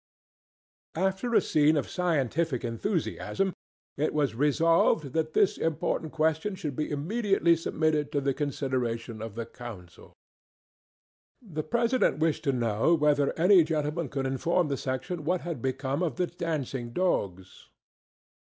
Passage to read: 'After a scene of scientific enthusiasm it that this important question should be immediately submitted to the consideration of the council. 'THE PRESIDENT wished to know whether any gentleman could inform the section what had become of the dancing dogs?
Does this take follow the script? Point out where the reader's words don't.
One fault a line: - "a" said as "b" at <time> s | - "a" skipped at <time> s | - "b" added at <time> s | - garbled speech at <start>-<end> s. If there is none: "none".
- "was resolved" added at 4.2 s